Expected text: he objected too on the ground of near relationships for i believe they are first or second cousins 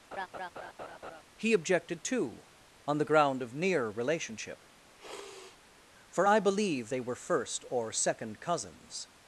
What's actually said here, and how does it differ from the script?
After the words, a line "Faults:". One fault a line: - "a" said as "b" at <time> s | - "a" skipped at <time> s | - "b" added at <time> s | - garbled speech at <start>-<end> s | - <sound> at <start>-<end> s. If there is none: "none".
he objected too on the ground of near relationship for i believe they were first or second cousins
Faults:
- laugh at 0.1-1.2 s
- "relationships" said as "relationship" at 3.9 s
- sniff at 5.0-5.6 s
- "are" said as "were" at 7.0 s